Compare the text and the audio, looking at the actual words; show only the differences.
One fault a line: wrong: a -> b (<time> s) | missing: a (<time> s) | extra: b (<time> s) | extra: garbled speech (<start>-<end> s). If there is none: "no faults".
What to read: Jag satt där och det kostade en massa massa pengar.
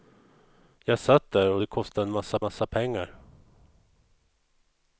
no faults